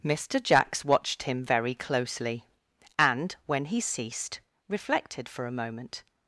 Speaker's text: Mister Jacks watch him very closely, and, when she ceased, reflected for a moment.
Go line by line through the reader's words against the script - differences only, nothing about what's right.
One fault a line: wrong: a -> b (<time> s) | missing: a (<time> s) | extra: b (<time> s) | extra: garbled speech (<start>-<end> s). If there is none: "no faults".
wrong: watch -> watched (0.8 s)
wrong: she -> he (3.6 s)